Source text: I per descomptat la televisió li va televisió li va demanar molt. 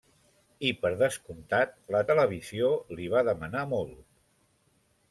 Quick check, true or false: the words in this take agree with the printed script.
false